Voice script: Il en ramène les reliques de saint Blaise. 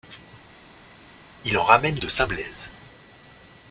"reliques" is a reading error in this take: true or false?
true